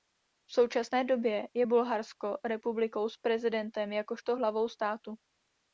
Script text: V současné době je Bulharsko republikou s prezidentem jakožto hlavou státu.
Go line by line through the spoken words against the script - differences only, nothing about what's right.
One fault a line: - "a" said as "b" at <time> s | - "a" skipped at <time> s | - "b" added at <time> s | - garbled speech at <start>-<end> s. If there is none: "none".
none